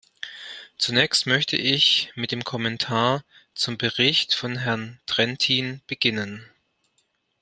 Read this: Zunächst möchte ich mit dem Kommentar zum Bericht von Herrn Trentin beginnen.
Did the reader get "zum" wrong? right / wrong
right